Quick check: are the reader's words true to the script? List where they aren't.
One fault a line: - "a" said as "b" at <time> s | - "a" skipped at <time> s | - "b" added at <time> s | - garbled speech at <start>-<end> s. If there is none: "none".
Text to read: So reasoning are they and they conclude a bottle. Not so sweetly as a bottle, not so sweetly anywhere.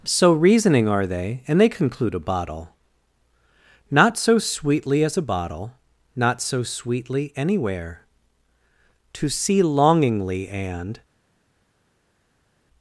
- "To see longingly and" added at 9.1 s